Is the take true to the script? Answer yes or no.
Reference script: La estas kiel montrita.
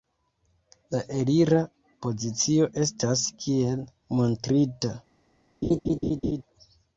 no